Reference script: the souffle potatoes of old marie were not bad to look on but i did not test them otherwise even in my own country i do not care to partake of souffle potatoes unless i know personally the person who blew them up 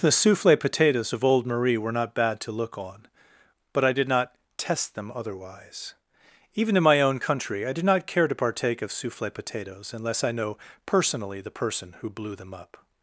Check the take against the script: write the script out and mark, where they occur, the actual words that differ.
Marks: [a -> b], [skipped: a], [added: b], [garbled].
the souffle potatoes of old marie were not bad to look on but i did not test them otherwise even in my own country i do not care to partake of souffle potatoes unless i know personally the person who blew them up